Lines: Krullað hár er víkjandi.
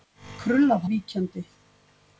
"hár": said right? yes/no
no